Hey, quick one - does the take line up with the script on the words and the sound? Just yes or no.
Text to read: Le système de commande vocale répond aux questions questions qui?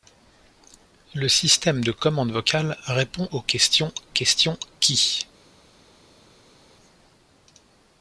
yes